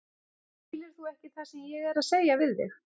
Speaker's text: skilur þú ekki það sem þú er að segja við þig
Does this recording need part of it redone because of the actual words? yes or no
yes